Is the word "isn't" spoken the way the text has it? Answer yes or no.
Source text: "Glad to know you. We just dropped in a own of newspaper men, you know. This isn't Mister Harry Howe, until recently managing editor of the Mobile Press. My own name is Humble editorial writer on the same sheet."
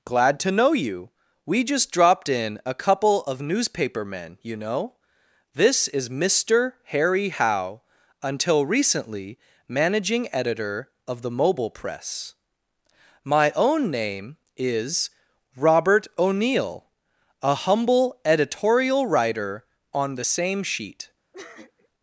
no